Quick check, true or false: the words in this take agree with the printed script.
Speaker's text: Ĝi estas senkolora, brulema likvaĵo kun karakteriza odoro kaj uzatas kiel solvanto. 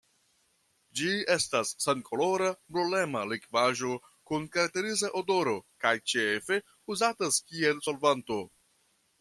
false